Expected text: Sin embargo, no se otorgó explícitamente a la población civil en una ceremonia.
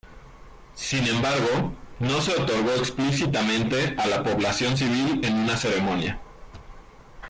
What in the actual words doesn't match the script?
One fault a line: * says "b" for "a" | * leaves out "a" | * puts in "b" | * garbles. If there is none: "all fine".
all fine